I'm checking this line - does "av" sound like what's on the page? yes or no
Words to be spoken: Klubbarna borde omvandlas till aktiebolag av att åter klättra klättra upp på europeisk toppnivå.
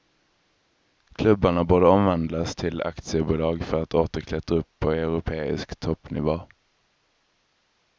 no